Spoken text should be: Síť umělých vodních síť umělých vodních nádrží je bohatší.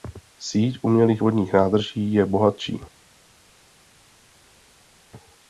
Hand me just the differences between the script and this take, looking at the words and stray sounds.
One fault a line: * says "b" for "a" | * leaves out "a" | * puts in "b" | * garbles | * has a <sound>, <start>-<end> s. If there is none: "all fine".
* leaves out "síť umělých vodních"